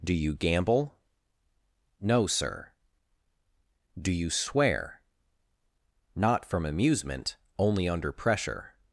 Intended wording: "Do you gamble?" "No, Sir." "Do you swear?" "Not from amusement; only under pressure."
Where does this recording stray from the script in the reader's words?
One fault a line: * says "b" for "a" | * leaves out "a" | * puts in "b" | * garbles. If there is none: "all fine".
all fine